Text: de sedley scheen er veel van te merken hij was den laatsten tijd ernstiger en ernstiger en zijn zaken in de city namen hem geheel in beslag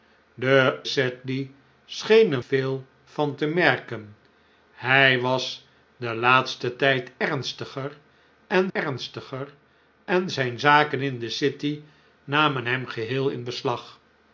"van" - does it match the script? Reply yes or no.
yes